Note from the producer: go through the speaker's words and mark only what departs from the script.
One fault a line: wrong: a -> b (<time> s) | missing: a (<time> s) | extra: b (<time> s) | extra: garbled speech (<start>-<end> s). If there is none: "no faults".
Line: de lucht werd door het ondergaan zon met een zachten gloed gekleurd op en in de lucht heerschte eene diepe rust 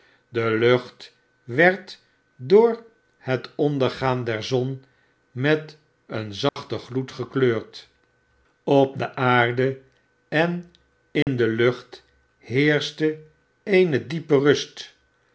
extra: der (4.2 s)
extra: de aarde (9.0 s)